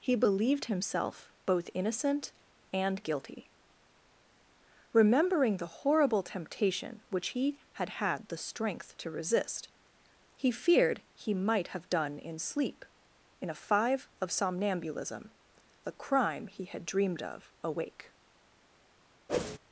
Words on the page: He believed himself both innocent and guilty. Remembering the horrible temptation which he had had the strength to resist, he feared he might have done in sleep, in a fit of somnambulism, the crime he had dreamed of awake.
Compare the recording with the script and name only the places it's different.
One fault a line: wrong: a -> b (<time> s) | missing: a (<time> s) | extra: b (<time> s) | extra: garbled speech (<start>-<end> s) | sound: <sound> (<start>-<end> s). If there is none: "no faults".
wrong: fit -> five (13.6 s)
sound: whoosh (19.3-19.6 s)